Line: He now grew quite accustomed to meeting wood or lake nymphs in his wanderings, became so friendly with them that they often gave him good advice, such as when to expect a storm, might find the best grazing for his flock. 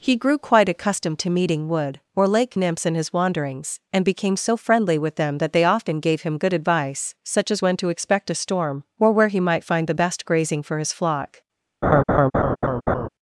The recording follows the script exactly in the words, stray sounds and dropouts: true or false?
false